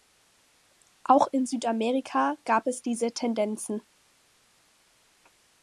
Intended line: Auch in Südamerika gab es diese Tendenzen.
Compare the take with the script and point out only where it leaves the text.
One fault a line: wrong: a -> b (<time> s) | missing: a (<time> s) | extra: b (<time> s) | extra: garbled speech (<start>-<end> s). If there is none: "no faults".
no faults